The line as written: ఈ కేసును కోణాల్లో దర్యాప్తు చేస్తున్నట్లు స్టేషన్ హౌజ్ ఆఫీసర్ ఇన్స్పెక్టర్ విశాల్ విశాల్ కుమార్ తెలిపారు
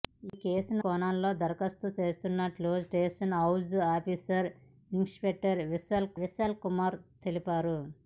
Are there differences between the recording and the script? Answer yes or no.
no